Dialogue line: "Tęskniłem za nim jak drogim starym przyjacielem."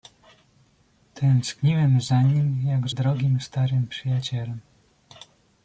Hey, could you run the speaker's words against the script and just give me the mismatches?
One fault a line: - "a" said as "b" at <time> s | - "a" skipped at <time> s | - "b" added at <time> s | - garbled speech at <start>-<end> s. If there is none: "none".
none